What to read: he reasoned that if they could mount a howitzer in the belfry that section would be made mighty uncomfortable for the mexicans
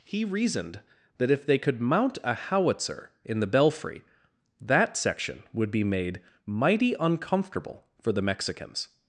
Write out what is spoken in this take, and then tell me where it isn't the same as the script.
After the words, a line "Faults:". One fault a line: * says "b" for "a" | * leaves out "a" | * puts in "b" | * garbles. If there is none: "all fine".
he reasoned that if they could mount a howitzer in the belfry that section would be made mighty uncomfortable for the mexicans
Faults:
all fine